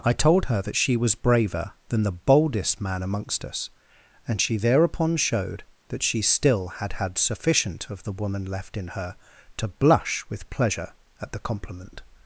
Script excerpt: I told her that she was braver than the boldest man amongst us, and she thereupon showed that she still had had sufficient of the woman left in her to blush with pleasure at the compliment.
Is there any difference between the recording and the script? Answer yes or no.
no